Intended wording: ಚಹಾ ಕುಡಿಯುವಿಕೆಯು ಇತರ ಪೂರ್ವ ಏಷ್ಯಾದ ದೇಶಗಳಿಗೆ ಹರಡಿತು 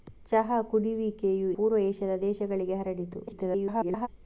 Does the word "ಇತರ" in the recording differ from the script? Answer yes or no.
yes